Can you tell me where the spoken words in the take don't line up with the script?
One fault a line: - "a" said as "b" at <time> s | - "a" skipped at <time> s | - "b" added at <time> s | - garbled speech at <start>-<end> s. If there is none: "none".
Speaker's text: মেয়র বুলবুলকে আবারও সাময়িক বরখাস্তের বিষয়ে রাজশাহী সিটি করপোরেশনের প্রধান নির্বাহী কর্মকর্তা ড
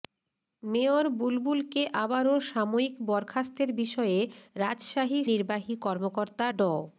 - "সিটি করপোরেশনের প্রধান" skipped at 5.2 s